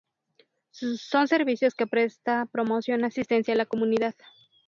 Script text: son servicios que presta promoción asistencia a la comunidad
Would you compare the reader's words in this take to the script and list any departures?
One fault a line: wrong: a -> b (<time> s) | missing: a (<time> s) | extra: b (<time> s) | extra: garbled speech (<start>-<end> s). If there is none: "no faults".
no faults